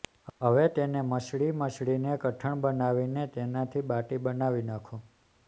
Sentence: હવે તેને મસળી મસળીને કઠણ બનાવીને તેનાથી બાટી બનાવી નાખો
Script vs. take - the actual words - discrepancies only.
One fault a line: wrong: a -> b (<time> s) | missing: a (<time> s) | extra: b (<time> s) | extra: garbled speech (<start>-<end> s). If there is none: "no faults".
no faults